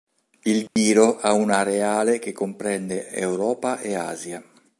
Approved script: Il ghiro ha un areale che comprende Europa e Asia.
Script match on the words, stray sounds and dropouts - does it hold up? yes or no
no